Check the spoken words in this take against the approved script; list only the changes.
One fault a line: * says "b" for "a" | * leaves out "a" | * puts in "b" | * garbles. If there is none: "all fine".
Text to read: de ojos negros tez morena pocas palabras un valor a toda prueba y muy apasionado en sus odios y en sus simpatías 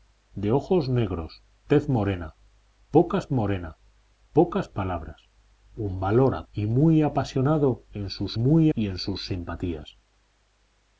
* puts in "morena pocas"
* leaves out "toda prueba"
* says "muy" for "odios"